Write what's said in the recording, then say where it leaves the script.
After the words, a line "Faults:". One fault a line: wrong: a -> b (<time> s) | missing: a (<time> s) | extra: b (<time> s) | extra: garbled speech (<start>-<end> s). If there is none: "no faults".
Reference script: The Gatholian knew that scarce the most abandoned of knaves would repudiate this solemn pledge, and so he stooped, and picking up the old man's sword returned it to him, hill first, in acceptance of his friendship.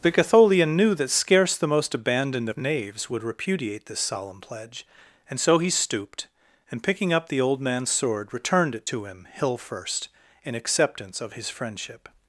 The Gatholian knew that scarce the most abandoned of knaves would repudiate this solemn pledge, and so he stooped, and picking up the old man's sword returned it to him, hill first, in acceptance of his friendship.
Faults:
no faults